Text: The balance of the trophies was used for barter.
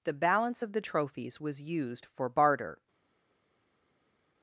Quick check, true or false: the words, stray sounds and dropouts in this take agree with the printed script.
true